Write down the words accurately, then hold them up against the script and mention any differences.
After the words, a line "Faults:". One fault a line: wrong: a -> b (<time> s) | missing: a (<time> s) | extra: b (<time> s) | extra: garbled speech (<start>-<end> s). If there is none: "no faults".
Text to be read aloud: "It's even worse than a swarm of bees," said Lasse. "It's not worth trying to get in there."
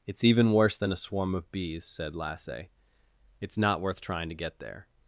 "It's even worse than a swarm of bees," said Lasse. "It's not worth trying to get there."
Faults:
missing: in (4.6 s)